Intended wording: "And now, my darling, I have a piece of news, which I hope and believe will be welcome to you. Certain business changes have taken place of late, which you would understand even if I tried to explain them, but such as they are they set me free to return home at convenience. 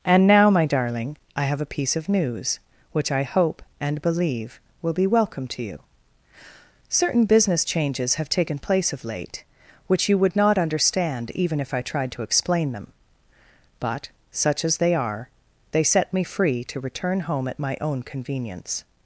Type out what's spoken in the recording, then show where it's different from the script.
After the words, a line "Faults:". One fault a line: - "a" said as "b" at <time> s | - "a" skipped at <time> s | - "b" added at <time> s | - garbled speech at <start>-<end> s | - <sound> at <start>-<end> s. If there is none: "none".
"And now, my darling, I have a piece of news, which I hope and believe will be welcome to you. Certain business changes have taken place of late, which you would not understand even if I tried to explain them, but such as they are they set me free to return home at my own convenience.
Faults:
- "not" added at 10.3 s
- "my own" added at 17.6 s